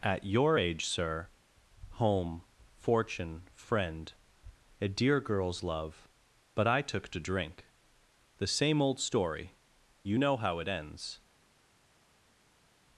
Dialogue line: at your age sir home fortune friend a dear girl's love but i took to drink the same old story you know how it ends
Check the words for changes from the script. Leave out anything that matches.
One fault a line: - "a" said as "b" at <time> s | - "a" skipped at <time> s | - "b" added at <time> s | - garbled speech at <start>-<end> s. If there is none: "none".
none